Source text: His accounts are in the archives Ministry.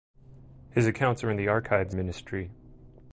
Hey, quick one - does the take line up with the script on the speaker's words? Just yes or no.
yes